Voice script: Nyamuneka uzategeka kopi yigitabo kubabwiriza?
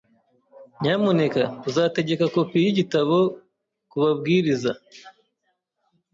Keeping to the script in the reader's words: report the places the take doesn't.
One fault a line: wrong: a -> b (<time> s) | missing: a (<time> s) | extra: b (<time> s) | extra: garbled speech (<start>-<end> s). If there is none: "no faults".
no faults